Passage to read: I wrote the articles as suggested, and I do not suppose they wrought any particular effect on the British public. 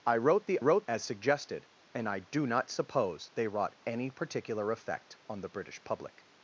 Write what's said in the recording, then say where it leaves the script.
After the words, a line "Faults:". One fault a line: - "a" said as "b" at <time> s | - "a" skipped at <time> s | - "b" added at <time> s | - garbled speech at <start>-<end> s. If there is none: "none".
I wrote the wrote as suggested, and I do not suppose they wrought any particular effect on the British public.
Faults:
- "articles" said as "wrote" at 0.6 s